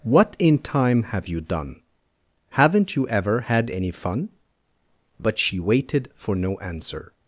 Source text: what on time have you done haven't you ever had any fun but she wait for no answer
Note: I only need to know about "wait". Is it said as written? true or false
false